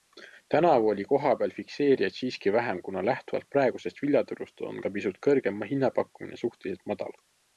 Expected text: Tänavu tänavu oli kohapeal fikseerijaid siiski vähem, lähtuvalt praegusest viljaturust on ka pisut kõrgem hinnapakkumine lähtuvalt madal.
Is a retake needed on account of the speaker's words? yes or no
yes